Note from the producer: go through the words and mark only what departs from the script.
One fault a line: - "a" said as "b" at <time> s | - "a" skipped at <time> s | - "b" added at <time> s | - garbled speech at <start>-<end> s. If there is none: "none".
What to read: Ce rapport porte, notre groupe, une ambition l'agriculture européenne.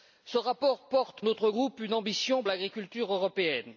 none